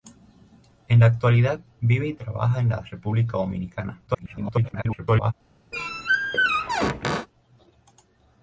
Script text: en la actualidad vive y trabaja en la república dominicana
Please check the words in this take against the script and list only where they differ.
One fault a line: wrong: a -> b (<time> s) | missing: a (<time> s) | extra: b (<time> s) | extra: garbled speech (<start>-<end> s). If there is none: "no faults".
extra: garbled speech (4.1-5.3 s)